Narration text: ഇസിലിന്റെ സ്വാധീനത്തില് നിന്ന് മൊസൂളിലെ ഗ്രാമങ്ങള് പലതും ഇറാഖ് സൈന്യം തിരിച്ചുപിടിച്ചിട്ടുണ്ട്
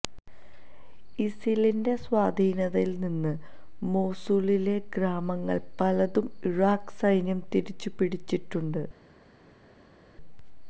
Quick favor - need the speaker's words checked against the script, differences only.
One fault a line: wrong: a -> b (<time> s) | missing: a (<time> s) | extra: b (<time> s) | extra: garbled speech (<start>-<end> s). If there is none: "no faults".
no faults